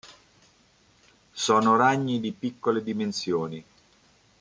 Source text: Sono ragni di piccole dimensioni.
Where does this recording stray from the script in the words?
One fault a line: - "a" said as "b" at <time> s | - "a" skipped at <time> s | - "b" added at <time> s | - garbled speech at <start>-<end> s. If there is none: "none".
none